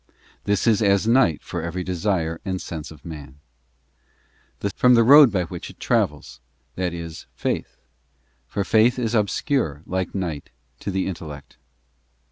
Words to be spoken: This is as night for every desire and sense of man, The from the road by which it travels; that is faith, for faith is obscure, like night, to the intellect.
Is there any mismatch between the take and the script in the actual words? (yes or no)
no